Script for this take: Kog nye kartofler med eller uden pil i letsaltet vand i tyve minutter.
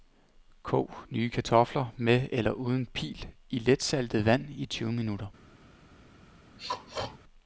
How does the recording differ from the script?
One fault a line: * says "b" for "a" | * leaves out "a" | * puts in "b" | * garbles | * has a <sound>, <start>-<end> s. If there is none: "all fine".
* has a throat clearing, 6.6-7.2 s